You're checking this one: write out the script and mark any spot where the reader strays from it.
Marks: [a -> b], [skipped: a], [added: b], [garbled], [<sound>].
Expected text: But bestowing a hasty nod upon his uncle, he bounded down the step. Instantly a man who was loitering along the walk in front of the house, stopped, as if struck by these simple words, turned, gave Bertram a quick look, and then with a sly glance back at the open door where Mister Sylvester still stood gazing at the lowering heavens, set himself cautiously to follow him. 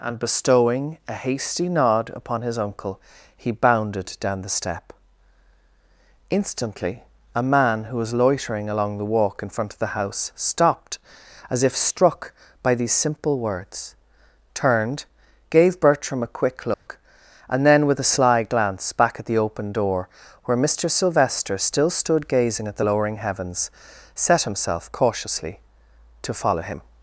[But -> And] bestowing a hasty nod upon his uncle, he bounded down the step. Instantly a man who was loitering along the walk in front of the house, stopped, as if struck by these simple words, turned, gave Bertram a quick look, [dropout] and then with a sly glance back at the open door where Mister Sylvester still stood gazing at the lowering heavens, set himself cautiously to follow him.